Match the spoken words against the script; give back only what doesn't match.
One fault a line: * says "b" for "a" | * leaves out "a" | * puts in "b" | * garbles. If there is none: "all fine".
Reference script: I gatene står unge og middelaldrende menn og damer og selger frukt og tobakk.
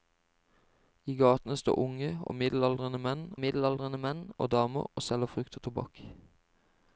* puts in "middelaldrende menn"